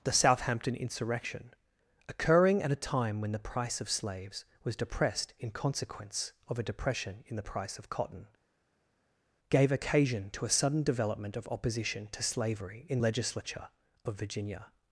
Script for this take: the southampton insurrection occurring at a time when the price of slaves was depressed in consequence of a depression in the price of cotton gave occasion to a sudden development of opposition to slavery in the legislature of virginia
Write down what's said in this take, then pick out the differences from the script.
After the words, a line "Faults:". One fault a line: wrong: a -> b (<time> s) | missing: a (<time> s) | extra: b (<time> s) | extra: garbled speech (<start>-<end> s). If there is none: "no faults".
the southampton insurrection occurring at a time when the price of slaves was depressed in consequence of a depression in the price of cotton gave occasion to a sudden development of opposition to slavery in legislature of virginia
Faults:
missing: the (13.0 s)